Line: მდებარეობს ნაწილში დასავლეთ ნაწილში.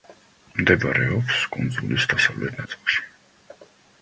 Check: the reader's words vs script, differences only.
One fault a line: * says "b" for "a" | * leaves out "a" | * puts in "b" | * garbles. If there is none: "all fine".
* says "კუნძულის" for "ნაწილში"